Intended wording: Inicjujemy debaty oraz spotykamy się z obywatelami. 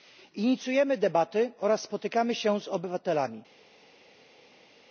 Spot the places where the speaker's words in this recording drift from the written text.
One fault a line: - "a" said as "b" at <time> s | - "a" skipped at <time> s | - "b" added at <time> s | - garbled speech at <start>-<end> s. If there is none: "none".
none